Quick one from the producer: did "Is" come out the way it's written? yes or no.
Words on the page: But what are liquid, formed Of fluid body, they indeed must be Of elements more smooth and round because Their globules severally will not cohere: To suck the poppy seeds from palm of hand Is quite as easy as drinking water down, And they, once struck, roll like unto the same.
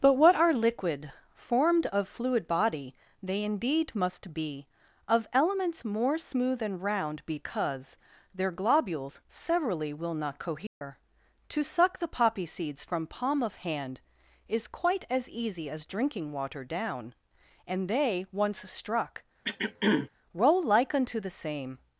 yes